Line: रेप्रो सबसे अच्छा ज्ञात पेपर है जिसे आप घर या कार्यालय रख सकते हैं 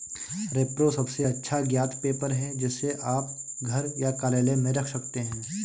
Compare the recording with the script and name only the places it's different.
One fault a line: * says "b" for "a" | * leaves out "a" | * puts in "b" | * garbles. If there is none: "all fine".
* puts in "में"